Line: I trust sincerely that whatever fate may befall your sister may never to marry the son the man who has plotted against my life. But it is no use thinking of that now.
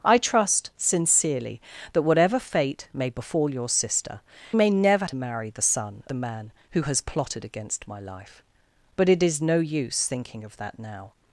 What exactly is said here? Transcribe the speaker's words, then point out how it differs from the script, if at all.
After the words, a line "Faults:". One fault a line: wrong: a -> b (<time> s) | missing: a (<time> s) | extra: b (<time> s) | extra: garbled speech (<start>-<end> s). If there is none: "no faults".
I trust sincerely that whatever fate may befall your sister may never to marry the son the man who has plotted against my life. But it is no use thinking of that now.
Faults:
no faults